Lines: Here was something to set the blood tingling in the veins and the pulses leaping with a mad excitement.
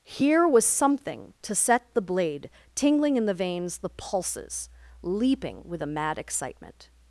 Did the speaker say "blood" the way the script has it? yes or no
no